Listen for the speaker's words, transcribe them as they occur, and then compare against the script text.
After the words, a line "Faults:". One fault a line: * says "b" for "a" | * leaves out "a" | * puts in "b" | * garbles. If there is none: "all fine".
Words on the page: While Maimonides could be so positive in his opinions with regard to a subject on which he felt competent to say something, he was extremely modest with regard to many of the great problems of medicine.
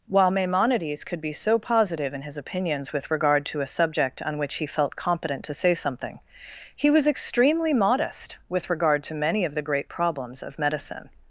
While Maimonides could be so positive in his opinions with regard to a subject on which he felt competent to say something, he was extremely modest with regard to many of the great problems of medicine.
Faults:
all fine